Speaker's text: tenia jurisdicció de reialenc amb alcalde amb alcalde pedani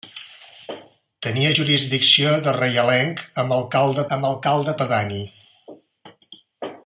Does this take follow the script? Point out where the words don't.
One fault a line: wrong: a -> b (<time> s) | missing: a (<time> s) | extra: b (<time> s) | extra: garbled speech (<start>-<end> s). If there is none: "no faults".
no faults